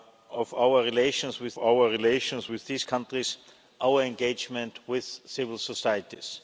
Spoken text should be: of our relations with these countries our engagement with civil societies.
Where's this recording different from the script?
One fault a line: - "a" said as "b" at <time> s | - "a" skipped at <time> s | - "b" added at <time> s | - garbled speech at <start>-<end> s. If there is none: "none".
- "our relations with" added at 1.6 s